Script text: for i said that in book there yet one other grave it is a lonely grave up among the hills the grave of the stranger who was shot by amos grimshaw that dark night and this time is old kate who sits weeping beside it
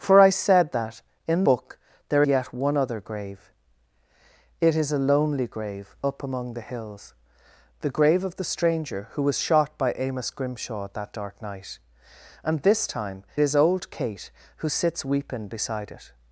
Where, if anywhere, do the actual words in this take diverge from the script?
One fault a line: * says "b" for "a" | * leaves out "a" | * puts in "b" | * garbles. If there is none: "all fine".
all fine